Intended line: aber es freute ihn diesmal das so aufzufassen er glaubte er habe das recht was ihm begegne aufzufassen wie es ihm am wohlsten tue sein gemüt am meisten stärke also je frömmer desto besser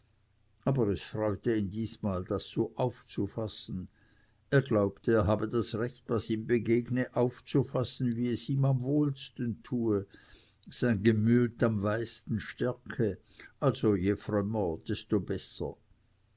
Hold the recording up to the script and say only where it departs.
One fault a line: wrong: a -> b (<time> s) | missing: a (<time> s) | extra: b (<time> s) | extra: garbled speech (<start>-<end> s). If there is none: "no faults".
no faults